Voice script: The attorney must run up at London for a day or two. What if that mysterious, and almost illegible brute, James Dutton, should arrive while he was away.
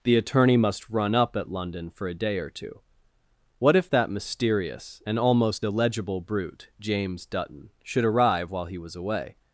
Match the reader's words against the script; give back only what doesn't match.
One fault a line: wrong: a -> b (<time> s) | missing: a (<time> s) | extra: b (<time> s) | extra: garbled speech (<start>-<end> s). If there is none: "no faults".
no faults